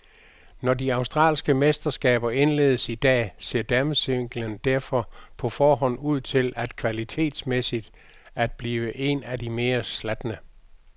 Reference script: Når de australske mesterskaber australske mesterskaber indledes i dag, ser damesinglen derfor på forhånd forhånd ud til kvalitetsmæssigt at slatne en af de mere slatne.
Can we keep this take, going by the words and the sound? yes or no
no